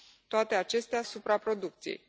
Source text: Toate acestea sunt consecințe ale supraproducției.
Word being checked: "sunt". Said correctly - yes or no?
no